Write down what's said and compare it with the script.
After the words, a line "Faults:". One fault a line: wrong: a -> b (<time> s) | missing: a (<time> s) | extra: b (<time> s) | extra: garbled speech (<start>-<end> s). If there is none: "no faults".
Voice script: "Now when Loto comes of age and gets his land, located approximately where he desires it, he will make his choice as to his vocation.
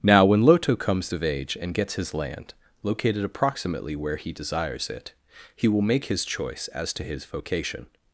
"Now when Loto comes of age and gets his land, located approximately where he desires it, he will make his choice as to his vocation.
Faults:
no faults